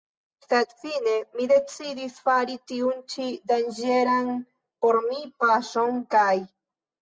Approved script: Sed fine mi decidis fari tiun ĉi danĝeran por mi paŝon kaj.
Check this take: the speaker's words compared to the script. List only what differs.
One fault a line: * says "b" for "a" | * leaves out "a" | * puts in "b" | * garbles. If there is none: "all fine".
all fine